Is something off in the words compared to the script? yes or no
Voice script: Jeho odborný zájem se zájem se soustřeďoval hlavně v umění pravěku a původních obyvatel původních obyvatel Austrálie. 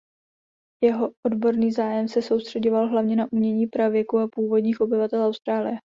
yes